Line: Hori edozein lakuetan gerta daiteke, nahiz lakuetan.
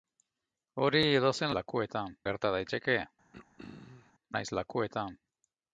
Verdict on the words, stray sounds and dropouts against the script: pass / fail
fail